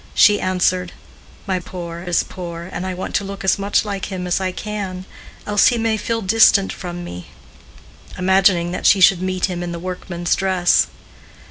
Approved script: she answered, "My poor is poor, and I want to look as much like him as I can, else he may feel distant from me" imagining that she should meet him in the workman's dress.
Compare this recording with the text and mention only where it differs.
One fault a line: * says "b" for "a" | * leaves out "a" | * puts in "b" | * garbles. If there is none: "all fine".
all fine